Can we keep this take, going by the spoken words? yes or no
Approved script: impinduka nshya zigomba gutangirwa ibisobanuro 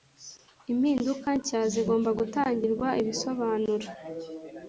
yes